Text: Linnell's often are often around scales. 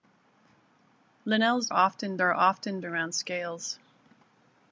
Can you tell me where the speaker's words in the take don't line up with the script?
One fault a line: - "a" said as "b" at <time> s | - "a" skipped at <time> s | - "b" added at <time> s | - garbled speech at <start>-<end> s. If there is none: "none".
none